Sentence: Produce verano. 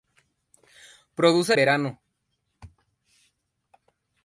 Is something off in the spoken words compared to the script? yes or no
no